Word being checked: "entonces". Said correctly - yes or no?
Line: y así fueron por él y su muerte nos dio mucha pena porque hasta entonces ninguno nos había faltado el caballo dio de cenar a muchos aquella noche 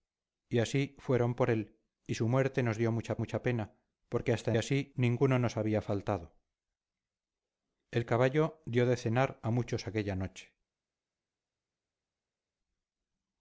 no